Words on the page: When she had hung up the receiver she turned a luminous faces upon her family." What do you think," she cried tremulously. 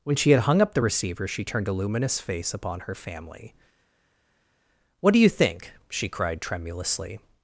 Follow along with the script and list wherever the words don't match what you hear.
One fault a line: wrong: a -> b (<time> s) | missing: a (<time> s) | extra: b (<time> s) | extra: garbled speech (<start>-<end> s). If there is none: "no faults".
wrong: faces -> face (2.2 s)